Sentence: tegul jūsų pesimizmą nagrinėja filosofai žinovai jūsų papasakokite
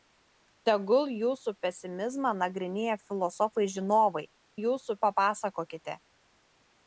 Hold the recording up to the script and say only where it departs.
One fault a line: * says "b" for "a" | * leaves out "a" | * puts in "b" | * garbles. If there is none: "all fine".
all fine